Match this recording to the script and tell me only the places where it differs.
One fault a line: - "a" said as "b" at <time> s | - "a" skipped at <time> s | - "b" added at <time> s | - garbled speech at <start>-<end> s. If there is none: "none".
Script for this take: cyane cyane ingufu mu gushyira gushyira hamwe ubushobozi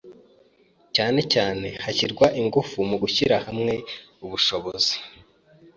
- "hashyirwa" added at 1.8 s
- "gushyira" skipped at 3.4 s